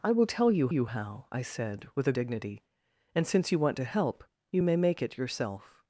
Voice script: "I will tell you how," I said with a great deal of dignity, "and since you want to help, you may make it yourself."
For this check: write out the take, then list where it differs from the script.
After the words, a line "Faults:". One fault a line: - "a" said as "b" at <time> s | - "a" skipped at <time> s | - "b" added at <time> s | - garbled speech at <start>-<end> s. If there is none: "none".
"I will tell you you how," I said with a dignity, "and since you want to help, you may make it yourself."
Faults:
- "you" added at 0.7 s
- "great deal of" skipped at 2.1 s